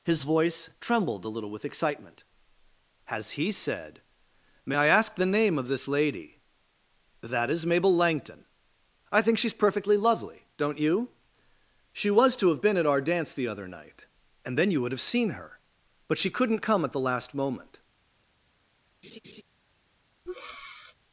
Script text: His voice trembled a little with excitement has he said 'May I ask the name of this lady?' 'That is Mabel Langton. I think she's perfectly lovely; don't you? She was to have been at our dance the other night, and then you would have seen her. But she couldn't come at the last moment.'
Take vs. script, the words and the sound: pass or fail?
fail